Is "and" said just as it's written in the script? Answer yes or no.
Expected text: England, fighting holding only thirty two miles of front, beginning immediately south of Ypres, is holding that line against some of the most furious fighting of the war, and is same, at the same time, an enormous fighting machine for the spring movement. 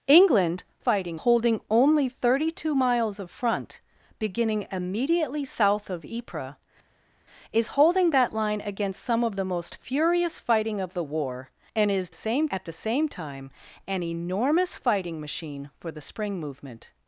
yes